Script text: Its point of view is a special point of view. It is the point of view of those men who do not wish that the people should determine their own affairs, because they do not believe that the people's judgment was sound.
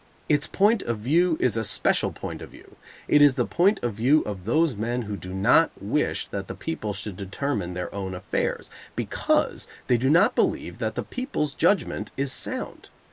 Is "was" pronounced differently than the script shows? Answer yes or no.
yes